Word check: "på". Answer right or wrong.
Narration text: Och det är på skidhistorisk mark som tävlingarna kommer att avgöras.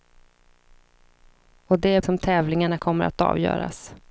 wrong